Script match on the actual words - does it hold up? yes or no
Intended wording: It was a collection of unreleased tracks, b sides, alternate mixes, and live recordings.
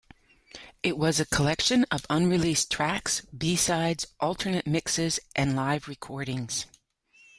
yes